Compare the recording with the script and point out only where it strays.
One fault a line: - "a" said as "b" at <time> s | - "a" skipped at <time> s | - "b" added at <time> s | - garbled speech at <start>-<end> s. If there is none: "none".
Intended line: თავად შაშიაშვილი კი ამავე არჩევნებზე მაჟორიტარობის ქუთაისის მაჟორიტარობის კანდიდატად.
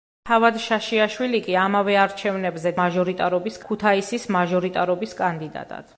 none